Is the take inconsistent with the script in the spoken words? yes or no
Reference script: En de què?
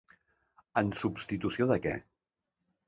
yes